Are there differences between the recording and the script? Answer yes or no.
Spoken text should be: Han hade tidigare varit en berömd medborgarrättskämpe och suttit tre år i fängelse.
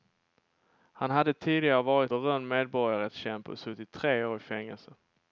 yes